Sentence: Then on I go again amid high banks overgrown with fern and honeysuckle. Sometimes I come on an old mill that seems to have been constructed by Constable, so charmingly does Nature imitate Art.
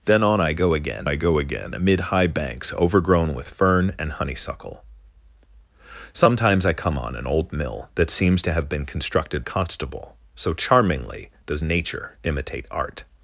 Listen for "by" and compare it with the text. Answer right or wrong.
wrong